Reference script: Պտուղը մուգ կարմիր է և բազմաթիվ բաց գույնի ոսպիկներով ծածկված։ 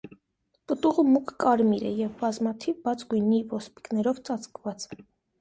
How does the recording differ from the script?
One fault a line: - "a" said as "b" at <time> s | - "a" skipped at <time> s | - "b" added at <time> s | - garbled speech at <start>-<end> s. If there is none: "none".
none